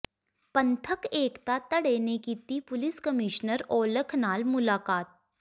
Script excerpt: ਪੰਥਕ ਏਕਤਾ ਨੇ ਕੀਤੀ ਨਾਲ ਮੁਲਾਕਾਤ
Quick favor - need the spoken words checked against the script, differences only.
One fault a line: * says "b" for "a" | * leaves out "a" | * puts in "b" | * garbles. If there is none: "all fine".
* puts in "ਧੜੇ"
* puts in "ਪੁਲਿਸ ਕਮਿਸ਼ਨਰ ਔਲਖ"